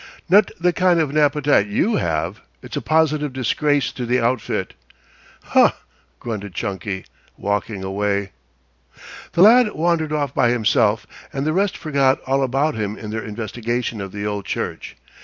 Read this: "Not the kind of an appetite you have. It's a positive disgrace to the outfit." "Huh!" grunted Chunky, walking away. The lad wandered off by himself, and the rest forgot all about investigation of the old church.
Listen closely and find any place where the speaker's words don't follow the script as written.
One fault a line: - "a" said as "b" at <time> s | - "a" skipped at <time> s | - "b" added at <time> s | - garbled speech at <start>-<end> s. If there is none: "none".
- "him in their" added at 12.7 s